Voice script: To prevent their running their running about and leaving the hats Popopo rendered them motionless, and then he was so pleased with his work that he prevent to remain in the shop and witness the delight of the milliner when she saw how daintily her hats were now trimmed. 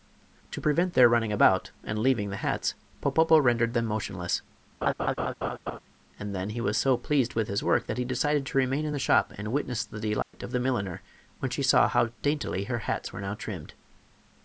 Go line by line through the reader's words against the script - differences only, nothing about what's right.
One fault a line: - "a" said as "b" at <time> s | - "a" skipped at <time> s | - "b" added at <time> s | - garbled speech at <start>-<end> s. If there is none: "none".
- "their running" skipped at 1.3 s
- "prevent" said as "decided" at 8.0 s